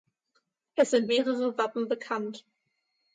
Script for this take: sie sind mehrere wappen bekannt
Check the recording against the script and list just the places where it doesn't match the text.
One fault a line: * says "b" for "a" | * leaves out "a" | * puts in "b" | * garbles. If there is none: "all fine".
* says "es" for "sie"